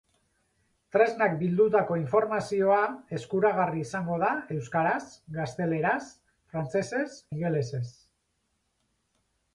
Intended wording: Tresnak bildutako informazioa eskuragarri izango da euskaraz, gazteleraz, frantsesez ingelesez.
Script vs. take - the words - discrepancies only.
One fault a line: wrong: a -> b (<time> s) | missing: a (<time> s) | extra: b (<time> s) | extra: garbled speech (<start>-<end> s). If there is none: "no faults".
no faults